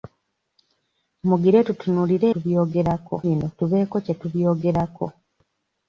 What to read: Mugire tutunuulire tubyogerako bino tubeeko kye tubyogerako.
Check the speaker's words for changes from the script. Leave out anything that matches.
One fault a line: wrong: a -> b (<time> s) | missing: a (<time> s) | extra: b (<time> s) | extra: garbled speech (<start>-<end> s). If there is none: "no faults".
no faults